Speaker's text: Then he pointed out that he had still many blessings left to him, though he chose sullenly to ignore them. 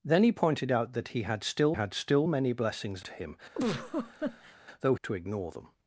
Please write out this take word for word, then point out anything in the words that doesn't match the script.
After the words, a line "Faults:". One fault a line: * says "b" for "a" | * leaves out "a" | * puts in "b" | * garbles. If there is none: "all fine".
Then he pointed out that he had still had still many blessings to him, though to ignore them.
Faults:
* puts in "had still"
* leaves out "left"
* leaves out "he chose sullenly"